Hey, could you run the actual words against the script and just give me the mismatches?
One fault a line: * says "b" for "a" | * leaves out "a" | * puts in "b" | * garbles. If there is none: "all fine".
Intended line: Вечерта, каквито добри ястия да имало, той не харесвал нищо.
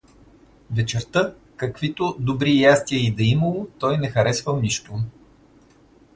* puts in "и"